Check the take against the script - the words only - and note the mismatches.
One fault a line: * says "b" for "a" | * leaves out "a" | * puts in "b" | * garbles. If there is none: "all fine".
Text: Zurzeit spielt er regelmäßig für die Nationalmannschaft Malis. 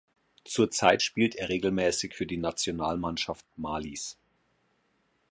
all fine